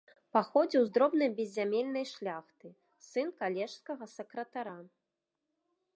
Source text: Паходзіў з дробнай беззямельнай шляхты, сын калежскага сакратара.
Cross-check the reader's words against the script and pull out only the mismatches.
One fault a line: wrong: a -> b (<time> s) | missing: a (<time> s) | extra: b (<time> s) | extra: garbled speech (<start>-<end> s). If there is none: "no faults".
no faults